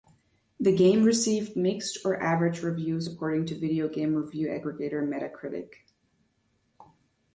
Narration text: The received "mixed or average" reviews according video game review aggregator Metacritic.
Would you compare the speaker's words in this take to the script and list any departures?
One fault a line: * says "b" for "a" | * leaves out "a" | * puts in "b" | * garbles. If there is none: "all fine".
* puts in "game"
* puts in "to"